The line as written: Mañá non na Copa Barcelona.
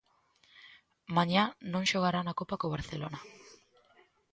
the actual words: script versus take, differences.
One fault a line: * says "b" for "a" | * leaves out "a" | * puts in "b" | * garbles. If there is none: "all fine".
* puts in "xogará"
* puts in "co"